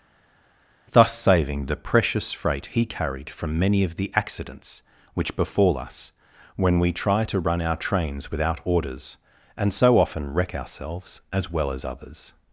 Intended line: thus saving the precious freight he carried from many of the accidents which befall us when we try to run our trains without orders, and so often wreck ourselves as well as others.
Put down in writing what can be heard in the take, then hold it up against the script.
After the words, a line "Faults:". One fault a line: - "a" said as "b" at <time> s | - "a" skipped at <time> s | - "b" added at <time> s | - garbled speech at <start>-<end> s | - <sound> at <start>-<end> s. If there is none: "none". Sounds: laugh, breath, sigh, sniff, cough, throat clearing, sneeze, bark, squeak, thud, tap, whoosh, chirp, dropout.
thus saving the precious freight he carried from many of the accidents which befall us when we try to run our trains without orders, and so often wreck ourselves as well as others.
Faults:
none